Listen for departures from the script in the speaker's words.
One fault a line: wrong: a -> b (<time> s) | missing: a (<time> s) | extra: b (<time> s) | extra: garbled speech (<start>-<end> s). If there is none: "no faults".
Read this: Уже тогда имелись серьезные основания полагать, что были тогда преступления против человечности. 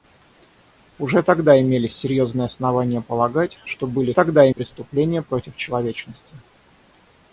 no faults